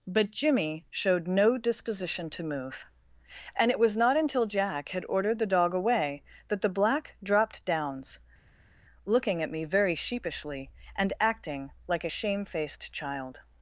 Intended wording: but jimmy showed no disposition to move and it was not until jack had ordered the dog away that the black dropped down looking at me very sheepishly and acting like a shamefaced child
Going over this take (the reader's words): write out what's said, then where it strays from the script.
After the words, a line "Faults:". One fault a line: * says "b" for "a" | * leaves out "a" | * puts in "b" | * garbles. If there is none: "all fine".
but jimmy showed no disposition to move and it was not until jack had ordered the dog away that the black dropped downs looking at me very sheepishly and acting like a shamefaced child
Faults:
* says "downs" for "down"